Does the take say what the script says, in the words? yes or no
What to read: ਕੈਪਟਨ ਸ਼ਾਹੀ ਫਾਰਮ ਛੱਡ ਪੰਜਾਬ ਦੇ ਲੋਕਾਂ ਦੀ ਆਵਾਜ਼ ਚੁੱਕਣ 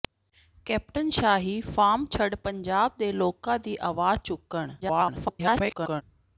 no